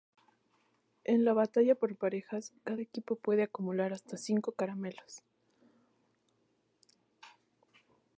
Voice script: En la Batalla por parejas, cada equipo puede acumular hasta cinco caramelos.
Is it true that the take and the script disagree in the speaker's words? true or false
false